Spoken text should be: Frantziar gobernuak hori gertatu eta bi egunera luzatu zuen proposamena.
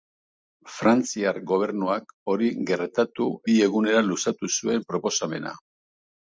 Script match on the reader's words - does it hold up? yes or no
no